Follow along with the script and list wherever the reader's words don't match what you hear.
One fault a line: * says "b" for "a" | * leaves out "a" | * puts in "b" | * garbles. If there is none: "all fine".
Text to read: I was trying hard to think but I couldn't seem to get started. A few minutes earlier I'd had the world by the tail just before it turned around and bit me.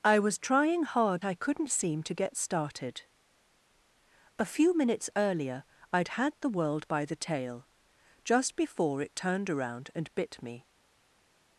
* leaves out "to think but"